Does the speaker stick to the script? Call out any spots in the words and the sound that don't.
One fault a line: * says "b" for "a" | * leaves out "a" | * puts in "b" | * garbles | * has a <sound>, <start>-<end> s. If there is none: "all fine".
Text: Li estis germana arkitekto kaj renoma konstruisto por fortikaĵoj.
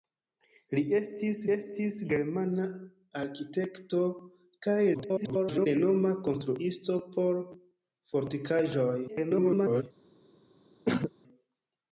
* puts in "estis"
* garbles
* garbles
* has a throat clearing, 10.9-11.1 s